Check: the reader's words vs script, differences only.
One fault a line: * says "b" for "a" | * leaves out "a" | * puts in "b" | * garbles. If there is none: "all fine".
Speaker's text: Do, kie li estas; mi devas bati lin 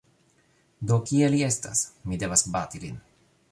all fine